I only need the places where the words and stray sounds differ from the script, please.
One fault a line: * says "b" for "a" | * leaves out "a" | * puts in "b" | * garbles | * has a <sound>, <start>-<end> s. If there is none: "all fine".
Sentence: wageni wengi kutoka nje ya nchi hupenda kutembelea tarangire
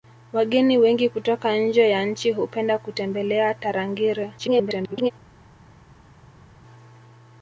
* garbles